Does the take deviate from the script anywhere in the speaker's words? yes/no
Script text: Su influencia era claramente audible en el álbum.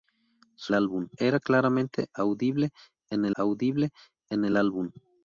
yes